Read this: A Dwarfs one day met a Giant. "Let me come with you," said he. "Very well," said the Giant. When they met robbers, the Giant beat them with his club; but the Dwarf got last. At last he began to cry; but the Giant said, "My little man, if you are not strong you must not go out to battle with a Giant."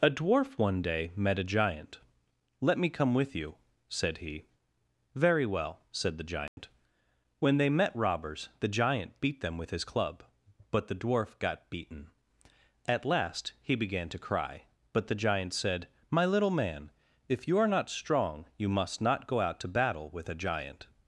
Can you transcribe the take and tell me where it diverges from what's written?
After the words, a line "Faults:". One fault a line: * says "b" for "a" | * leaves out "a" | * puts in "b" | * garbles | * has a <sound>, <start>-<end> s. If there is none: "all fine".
A Dwarf one day met a Giant. "Let me come with you," said he. "Very well," said the Giant. When they met robbers, the Giant beat them with his club; but the Dwarf got beaten. At last he began to cry; but the Giant said, "My little man, if you are not strong you must not go out to battle with a Giant."
Faults:
* says "Dwarf" for "Dwarfs"
* has a dropout, 6.5-6.6 s
* says "beaten" for "last"